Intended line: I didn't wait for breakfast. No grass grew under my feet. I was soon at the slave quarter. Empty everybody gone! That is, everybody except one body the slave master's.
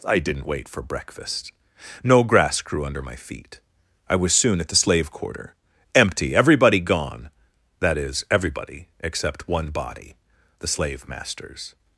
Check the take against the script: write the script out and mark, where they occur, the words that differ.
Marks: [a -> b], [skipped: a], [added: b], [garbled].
I didn't wait for breakfast. No grass grew under my feet. I was soon at the slave quarter. Empty everybody gone! That is, everybody except one body the slave master's.